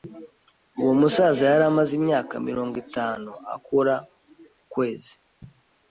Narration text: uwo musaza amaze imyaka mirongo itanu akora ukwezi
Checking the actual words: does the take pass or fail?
fail